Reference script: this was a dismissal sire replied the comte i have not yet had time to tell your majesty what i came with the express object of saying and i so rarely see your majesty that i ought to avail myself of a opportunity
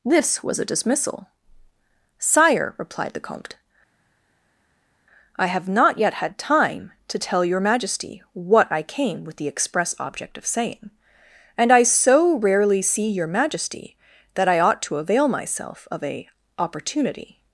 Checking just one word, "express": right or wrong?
right